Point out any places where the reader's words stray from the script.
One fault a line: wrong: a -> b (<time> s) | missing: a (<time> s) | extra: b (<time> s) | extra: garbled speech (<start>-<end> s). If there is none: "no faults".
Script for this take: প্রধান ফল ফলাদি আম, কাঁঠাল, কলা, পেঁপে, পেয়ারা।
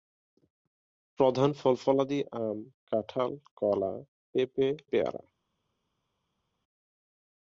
no faults